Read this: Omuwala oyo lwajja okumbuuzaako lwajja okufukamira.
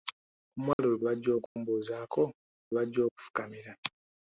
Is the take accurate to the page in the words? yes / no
yes